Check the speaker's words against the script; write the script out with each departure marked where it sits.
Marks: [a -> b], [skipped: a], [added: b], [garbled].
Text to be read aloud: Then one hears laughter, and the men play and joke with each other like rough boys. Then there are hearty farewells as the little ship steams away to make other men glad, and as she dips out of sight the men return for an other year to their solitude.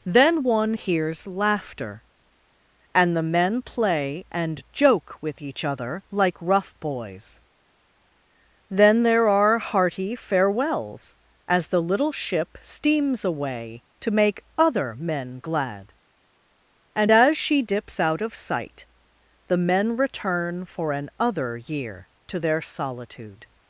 Then one hears laughter, and the men play and joke with each other like rough boys. Then there are hearty farewells as the little ship steams away to make other men glad, and as she dips out of sight the men return for an other year to their solitude.